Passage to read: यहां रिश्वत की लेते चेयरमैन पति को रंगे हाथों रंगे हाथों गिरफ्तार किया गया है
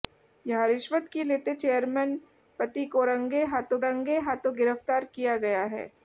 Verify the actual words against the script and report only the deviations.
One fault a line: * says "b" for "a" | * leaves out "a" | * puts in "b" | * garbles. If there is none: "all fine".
all fine